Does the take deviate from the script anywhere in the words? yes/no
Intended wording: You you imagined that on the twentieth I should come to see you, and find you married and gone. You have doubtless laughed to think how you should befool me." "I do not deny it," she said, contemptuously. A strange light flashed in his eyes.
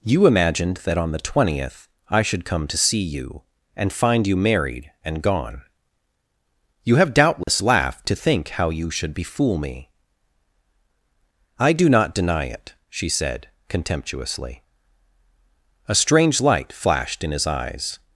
yes